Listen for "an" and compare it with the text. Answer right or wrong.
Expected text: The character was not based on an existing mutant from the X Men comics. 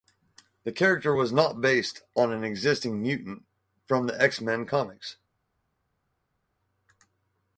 right